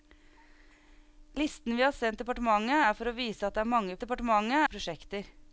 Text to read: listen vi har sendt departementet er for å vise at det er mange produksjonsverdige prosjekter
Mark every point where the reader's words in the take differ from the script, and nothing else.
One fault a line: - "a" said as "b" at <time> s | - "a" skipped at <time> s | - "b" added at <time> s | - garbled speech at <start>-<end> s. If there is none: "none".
- "produksjonsverdige" said as "departementet" at 4.0 s